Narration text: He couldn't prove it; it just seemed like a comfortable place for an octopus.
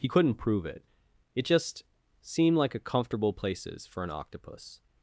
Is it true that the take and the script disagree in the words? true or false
true